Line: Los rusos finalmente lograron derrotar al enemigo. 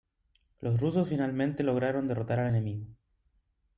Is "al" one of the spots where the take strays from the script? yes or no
no